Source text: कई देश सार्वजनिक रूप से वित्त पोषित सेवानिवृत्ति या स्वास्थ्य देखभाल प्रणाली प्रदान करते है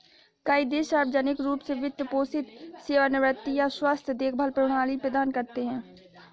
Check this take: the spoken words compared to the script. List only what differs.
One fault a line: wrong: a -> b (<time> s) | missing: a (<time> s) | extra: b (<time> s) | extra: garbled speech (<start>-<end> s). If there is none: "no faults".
no faults